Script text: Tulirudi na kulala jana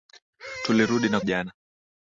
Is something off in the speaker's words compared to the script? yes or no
yes